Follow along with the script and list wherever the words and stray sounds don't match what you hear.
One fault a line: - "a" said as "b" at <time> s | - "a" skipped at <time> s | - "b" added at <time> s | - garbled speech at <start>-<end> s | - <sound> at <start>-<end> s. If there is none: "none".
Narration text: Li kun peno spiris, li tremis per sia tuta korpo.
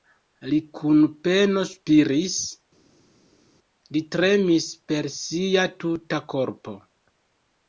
none